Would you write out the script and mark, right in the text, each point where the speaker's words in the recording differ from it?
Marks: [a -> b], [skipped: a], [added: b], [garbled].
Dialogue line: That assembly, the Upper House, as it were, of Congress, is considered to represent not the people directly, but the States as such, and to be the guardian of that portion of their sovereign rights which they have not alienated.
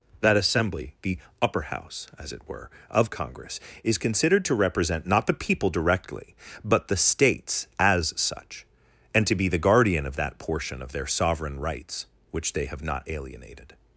That assembly, the Upper House, as it were, of Congress, is considered to represent not the people directly, but the States as such, and to be the guardian of that portion of their sovereign rights which they have not alienated.